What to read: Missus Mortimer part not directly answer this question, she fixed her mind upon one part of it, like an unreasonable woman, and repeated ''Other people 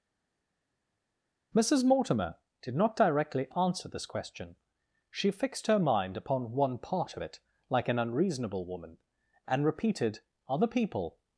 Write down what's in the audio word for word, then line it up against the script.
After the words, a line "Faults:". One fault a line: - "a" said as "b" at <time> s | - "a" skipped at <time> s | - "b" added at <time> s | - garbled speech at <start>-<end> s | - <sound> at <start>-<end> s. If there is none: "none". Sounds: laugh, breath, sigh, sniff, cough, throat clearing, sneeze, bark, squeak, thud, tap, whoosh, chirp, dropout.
Missus Mortimer did not directly answer this question, she fixed her mind upon one part of it, like an unreasonable woman, and repeated ''Other people
Faults:
- "part" said as "did" at 2.6 s